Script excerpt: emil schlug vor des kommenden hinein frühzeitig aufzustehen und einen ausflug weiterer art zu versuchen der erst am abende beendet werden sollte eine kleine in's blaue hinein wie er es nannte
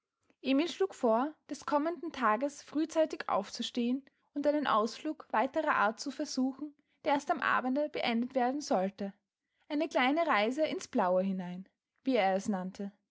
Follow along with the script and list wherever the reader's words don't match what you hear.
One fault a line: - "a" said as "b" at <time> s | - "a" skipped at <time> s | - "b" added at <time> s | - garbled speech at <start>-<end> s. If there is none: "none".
- "hinein" said as "tages" at 2.1 s
- "reise" added at 10.2 s